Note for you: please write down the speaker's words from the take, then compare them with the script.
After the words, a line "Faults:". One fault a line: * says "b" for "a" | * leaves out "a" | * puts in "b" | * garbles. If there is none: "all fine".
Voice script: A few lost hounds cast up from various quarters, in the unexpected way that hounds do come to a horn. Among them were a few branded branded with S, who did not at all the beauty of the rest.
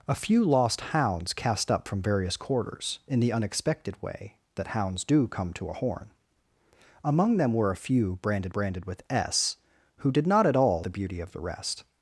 A few lost hounds cast up from various quarters, in the unexpected way that hounds do come to a horn. Among them were a few branded branded with S, who did not at all the beauty of the rest.
Faults:
all fine